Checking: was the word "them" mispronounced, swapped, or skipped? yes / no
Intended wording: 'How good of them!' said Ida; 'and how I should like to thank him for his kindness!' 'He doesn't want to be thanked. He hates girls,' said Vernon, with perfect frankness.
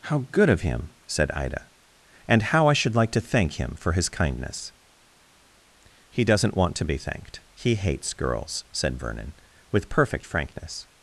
yes